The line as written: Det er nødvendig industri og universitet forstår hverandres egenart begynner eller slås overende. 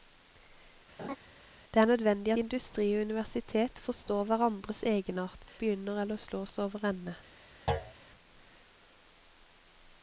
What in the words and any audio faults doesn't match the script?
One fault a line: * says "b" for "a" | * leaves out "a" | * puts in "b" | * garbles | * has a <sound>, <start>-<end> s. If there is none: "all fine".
* has a laugh, 1.0-1.2 s
* has a thud, 7.7-7.9 s